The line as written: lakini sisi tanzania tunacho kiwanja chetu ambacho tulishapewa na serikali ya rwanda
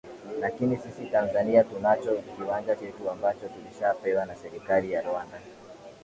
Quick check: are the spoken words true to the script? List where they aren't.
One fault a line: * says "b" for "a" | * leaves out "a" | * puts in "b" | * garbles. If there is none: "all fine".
all fine